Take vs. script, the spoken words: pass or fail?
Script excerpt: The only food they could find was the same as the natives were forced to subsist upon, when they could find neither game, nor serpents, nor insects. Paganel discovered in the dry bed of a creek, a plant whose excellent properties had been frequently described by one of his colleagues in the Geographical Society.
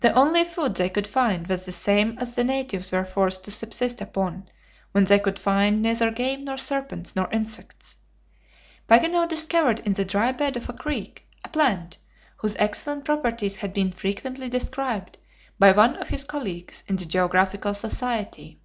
pass